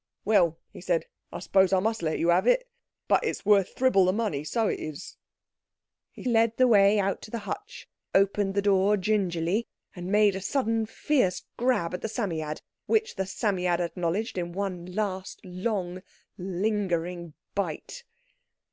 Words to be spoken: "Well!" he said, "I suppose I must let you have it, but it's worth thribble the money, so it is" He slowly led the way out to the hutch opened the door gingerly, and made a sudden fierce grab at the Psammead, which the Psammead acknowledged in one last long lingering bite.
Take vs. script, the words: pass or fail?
fail